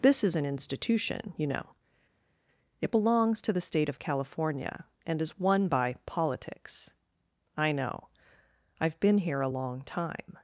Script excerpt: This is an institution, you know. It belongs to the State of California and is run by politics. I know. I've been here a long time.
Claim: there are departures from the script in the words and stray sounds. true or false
true